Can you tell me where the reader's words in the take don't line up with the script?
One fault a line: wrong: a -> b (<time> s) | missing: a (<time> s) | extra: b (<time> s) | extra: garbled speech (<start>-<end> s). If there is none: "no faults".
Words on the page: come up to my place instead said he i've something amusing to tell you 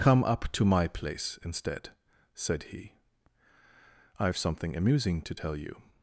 no faults